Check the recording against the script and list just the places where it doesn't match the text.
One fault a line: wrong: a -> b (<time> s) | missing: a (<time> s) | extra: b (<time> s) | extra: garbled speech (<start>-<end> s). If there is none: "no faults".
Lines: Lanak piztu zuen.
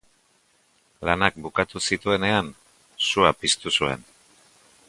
extra: bukatu zituenean sua (1.4 s)